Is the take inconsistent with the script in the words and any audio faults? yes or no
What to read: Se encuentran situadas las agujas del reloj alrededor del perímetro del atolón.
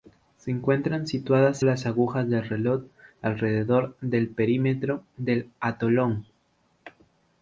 no